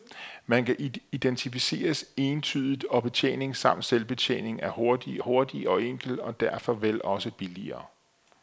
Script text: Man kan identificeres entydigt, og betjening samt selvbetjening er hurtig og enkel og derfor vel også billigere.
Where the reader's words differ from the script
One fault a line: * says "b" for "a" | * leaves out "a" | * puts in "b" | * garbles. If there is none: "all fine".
* puts in "hurtig"